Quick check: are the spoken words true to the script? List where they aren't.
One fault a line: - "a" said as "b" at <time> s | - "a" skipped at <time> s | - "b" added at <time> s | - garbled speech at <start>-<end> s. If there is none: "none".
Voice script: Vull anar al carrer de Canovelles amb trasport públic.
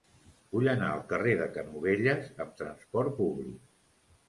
none